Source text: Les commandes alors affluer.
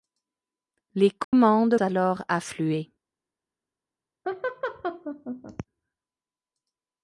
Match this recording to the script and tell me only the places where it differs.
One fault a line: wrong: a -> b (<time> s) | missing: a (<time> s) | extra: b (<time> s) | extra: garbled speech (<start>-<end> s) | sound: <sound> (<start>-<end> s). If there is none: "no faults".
sound: dropout (1.2-1.3 s)
sound: laugh (4.2-5.6 s)